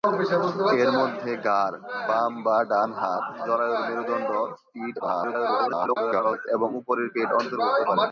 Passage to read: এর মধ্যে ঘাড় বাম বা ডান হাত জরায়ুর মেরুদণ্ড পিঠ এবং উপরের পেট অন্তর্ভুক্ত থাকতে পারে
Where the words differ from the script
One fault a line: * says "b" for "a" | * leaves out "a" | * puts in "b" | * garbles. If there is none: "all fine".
* garbles
* leaves out "থাকতে"